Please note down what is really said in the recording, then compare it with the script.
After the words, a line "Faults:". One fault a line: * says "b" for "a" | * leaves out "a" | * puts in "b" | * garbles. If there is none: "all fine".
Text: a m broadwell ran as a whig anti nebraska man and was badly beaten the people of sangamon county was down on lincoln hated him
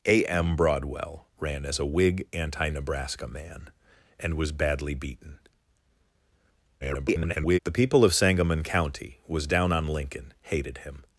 a m broadwell ran as a whig anti nebraska man and was badly beaten [garbled] the people of sangamon county was down on lincoln hated him
Faults:
* garbles